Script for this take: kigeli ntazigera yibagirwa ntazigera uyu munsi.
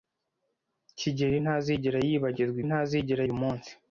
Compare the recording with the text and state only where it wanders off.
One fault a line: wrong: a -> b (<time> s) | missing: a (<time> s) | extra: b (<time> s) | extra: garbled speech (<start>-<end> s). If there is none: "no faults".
no faults